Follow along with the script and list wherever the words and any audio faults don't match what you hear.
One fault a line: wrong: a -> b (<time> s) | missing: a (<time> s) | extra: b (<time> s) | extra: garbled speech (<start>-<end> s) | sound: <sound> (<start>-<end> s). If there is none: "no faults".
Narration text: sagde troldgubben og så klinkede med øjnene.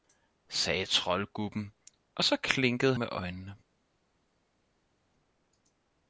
no faults